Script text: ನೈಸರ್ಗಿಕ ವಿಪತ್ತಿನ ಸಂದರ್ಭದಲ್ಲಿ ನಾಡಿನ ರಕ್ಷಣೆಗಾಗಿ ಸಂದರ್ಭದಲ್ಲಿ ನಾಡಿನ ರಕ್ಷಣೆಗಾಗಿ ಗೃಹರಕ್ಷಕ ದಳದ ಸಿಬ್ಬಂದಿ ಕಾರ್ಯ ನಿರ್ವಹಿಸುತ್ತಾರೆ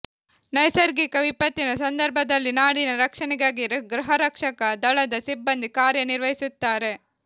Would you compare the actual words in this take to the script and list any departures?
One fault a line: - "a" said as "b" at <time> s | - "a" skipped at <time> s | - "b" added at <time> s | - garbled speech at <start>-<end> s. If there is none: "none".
- "ಸಂದರ್ಭದಲ್ಲಿ ನಾಡಿನ ರಕ್ಷಣೆಗಾಗಿ" skipped at 3.6 s